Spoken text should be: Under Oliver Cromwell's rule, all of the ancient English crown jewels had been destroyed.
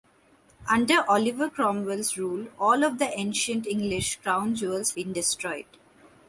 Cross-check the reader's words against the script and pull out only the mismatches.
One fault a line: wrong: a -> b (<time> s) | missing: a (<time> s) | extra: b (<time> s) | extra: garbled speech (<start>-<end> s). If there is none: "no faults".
missing: had (5.0 s)